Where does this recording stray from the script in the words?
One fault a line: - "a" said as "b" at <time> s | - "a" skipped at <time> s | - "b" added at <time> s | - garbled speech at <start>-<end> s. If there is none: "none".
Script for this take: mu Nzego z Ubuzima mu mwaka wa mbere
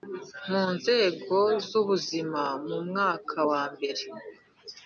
none